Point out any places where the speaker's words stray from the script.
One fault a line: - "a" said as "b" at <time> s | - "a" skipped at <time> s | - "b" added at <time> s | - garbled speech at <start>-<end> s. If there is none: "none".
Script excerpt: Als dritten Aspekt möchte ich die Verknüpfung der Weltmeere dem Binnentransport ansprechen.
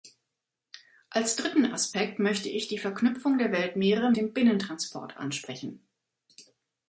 none